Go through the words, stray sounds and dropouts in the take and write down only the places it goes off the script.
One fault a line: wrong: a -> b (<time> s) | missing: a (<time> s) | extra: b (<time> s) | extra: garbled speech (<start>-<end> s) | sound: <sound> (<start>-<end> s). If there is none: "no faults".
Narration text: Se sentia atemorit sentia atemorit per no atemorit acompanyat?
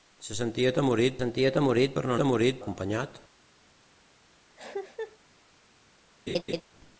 sound: cough (4.6-5.2 s)
sound: laugh (6.3-6.6 s)